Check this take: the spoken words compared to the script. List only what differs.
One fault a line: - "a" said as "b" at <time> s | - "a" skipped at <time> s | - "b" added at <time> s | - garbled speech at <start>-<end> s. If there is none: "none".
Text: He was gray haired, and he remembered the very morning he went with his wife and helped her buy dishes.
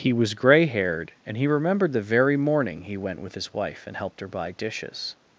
none